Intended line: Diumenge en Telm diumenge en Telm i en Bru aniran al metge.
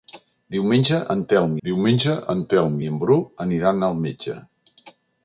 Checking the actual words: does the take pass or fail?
pass